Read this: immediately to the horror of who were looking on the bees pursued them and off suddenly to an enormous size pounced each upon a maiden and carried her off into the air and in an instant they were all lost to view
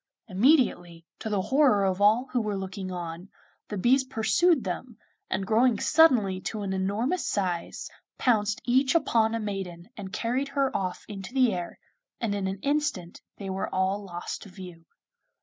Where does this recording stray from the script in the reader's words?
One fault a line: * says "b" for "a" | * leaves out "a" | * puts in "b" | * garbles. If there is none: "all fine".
* puts in "all"
* says "growing" for "off"